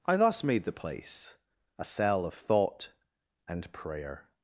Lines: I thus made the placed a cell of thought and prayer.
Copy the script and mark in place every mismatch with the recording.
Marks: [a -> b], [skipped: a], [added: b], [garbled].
I thus made the [placed -> place] a cell of thought and prayer.